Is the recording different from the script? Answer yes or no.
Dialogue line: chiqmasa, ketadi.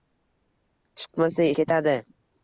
no